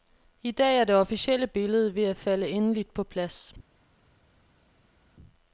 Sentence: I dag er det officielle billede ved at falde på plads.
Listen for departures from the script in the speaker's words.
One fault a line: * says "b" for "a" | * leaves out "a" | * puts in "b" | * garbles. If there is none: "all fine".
* puts in "endeligt"